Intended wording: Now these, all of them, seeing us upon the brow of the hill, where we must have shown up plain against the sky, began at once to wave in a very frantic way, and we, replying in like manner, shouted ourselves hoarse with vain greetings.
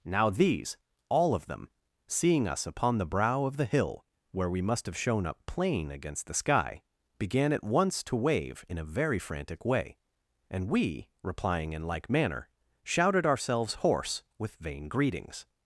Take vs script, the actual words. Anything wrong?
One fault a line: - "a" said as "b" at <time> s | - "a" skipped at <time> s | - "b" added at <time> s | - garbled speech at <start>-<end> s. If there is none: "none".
none